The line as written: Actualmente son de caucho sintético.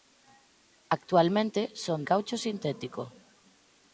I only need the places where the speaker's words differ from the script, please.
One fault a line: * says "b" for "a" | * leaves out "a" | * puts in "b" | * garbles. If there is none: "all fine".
* leaves out "de"